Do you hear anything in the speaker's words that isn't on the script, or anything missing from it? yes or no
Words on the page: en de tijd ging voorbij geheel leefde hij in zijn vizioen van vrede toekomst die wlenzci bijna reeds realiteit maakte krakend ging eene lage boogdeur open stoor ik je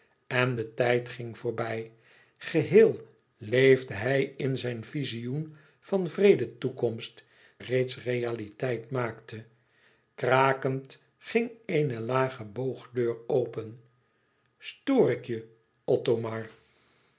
yes